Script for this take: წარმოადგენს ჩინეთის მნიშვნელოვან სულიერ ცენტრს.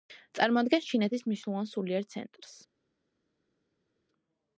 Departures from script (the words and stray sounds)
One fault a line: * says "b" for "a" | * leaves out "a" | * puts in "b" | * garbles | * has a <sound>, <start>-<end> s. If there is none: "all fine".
all fine